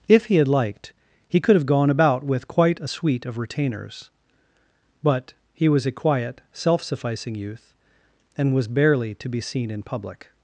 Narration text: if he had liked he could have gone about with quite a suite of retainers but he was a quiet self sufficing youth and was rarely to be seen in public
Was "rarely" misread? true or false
true